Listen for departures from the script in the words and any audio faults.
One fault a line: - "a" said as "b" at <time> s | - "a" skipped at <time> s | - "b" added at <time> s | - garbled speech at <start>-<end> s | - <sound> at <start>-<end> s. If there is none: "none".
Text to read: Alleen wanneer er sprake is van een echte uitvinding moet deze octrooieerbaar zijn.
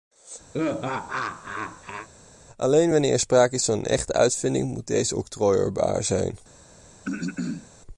- laugh at 0.5-2.1 s
- throat clearing at 7.0-7.7 s